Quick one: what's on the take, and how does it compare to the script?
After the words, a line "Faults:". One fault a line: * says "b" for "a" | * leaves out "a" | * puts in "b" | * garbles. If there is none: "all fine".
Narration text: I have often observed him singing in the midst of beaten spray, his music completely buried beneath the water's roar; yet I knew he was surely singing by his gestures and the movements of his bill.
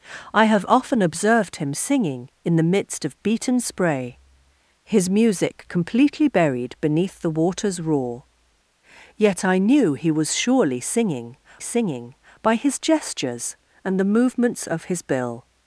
I have often observed him singing in the midst of beaten spray, his music completely buried beneath the water's roar; yet I knew he was surely singing singing by his gestures and the movements of his bill.
Faults:
* puts in "singing"